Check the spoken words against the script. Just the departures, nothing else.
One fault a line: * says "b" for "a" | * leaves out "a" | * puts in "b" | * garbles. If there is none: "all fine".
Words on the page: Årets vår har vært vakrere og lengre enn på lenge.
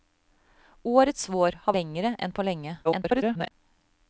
* leaves out "vært vakrere og"
* garbles